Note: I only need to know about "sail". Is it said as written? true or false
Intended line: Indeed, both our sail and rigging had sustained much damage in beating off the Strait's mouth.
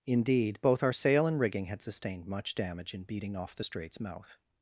true